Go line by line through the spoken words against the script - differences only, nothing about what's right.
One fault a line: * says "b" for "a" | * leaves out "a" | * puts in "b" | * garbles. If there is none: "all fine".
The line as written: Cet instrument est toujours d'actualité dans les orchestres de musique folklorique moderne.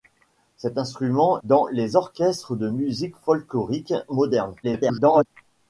* leaves out "est toujours d'actualité"
* garbles